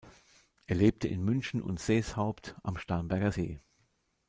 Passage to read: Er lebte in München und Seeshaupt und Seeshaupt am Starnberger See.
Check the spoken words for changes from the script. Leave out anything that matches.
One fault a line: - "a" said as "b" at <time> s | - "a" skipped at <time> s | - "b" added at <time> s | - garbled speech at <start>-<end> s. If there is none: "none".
- "und Seeshaupt" skipped at 2.5 s